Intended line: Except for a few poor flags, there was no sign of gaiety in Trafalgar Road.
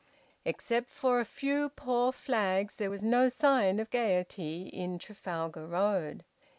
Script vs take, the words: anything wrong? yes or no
no